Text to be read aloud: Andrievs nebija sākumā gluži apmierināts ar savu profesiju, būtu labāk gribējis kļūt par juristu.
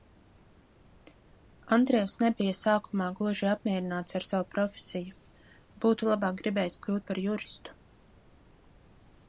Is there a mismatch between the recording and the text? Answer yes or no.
no